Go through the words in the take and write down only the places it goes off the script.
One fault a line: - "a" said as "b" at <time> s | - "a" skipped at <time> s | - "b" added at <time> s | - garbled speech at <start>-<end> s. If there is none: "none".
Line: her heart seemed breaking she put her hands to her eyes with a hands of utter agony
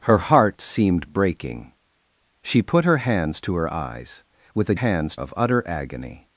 none